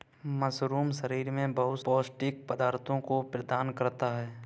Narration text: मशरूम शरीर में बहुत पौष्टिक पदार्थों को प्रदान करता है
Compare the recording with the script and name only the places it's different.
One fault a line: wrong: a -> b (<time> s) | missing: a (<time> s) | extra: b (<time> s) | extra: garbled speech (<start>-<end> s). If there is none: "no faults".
no faults